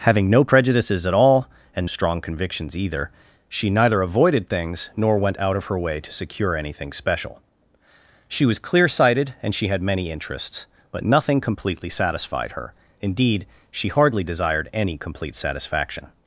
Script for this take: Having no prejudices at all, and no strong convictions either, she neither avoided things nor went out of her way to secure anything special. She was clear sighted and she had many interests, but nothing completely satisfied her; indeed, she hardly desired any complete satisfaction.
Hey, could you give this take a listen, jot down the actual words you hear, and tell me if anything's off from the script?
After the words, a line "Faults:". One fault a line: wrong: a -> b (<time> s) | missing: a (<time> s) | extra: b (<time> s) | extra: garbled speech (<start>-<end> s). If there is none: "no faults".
Having no prejudices at all, and strong convictions either, she neither avoided things nor went out of her way to secure anything special. She was clear sighted and she had many interests, but nothing completely satisfied her; indeed, she hardly desired any complete satisfaction.
Faults:
missing: no (1.9 s)